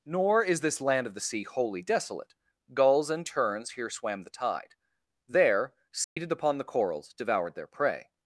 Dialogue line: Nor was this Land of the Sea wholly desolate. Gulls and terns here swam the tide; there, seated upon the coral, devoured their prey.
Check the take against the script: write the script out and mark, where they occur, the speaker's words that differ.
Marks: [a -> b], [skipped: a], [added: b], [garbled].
Nor [was -> is] this Land of the Sea wholly desolate. Gulls and terns here swam the tide; there, seated upon the [coral, -> corals] devoured their prey.